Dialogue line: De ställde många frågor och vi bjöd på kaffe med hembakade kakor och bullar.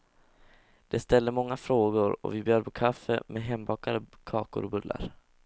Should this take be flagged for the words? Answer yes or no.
no